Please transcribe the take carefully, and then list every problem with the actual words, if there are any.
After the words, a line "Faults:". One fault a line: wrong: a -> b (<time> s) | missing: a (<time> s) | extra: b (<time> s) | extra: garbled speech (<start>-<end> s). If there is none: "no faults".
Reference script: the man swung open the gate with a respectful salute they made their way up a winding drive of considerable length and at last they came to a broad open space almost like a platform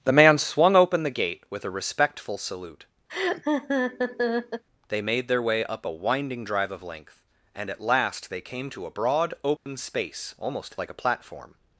the man swung open the gate with a respectful salute they made their way up a winding drive of length and at last they came to a broad open space almost like a platform
Faults:
missing: considerable (6.8 s)